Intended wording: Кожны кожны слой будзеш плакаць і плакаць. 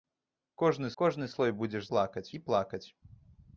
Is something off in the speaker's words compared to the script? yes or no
no